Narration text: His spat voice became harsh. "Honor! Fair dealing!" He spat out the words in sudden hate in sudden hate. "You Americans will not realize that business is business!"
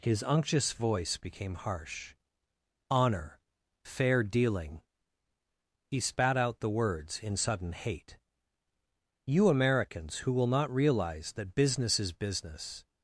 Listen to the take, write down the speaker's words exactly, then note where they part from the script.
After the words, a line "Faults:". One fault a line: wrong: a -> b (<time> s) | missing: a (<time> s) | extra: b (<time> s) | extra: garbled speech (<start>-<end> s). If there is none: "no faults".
His unctuous voice became harsh. "Honor! Fair dealing!" He spat out the words in sudden hate. "You Americans who will not realize that business is business!"
Faults:
wrong: spat -> unctuous (0.2 s)
missing: in sudden hate (8.2 s)
extra: who (10.2 s)